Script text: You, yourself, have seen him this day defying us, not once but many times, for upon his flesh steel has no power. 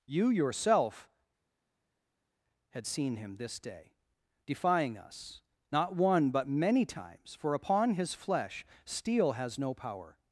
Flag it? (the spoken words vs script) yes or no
yes